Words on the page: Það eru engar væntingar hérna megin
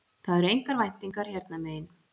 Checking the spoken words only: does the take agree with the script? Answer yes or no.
yes